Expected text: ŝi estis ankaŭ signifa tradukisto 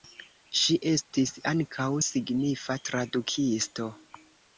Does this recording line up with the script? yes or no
yes